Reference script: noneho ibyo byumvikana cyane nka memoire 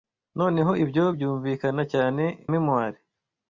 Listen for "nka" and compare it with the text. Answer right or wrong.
wrong